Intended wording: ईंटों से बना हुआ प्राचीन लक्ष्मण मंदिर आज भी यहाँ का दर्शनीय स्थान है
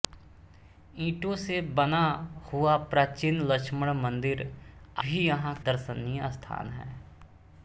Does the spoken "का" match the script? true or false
false